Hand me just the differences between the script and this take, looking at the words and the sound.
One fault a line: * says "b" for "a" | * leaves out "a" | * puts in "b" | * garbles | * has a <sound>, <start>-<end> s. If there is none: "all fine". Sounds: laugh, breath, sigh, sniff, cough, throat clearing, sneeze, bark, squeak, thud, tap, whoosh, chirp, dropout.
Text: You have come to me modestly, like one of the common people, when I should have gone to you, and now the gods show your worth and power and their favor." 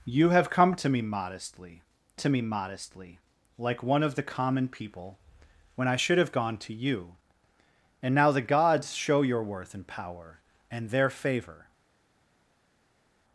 * puts in "to me modestly"